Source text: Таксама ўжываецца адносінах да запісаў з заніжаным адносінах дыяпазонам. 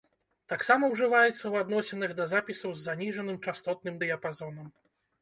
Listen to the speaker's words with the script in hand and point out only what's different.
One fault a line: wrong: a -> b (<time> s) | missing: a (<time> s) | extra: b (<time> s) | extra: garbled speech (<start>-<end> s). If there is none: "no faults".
extra: ў (1.3 s)
wrong: адносінах -> частотным (3.5 s)